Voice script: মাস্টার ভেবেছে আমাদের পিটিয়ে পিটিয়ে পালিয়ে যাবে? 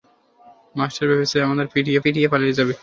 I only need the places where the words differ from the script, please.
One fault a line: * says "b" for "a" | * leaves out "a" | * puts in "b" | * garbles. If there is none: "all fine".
all fine